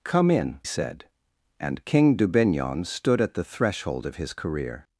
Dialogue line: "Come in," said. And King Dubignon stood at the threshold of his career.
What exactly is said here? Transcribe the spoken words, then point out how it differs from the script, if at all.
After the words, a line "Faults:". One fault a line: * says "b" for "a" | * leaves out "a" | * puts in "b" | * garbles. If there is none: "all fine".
"Come in," said. And King Dubignon stood at the threshold of his career.
Faults:
all fine